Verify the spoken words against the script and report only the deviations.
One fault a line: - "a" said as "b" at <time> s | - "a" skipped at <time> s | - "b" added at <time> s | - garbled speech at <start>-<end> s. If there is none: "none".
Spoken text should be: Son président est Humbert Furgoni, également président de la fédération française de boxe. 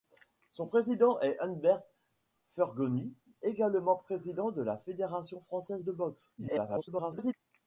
- garbled speech at 6.4-7.3 s